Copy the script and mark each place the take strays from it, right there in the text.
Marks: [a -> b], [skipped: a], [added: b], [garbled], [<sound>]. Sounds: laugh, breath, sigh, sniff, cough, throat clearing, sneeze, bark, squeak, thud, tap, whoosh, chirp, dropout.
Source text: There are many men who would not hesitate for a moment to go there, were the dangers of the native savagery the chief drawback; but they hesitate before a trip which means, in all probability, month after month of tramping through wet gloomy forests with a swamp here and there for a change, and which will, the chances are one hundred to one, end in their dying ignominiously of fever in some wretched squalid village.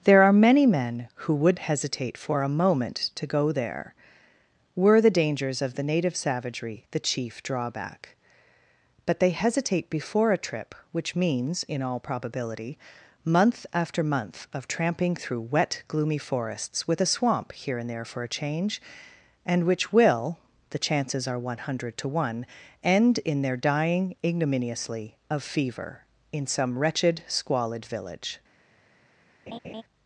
There are many men who would [skipped: not] hesitate for a moment to go there, were the dangers of the native savagery the chief drawback; but they hesitate before a trip which means, in all probability, month after month of tramping through wet gloomy forests with a swamp here and there for a change, and which will, the chances are one hundred to one, end in their dying ignominiously of fever in some wretched squalid village. [laugh]